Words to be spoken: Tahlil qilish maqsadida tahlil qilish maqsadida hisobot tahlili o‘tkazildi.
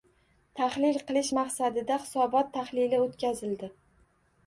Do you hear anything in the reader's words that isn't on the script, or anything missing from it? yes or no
yes